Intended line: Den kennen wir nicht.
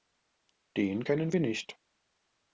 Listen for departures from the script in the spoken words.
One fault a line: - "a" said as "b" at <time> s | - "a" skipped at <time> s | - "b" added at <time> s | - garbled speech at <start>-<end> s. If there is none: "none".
none